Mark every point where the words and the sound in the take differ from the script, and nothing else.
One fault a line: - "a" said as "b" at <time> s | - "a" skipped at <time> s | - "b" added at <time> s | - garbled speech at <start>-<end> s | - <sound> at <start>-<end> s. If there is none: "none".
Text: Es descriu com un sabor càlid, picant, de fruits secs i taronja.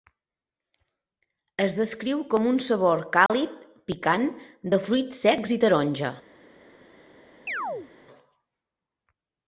- dropout at 3.3-3.3 s
- chirp at 7.5-7.9 s